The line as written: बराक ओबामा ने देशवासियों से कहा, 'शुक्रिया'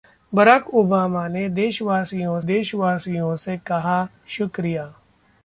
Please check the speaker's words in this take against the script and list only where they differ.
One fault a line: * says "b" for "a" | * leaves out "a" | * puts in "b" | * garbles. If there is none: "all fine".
* puts in "देशवासियों"